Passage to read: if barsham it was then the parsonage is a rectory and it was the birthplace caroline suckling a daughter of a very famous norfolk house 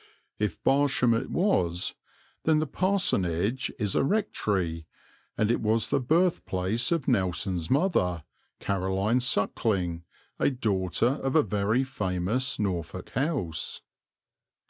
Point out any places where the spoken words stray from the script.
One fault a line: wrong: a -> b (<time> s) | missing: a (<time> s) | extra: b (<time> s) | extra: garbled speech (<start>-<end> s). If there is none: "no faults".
extra: of nelson's mother (6.9 s)